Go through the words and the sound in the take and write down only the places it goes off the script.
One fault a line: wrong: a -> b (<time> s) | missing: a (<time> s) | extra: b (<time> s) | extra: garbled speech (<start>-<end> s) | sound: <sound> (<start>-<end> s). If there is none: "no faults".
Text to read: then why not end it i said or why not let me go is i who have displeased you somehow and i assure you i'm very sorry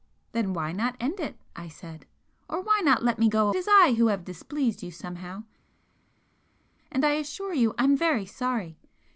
no faults